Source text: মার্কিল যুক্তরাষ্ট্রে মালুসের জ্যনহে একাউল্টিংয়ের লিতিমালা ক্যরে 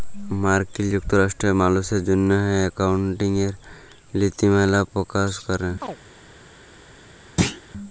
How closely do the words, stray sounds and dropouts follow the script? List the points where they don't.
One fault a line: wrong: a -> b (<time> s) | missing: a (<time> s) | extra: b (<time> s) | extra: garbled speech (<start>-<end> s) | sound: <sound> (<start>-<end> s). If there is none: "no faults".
extra: পকাশ (4.9 s)
sound: chirp (5.8-6.0 s)
sound: thud (7.4-7.6 s)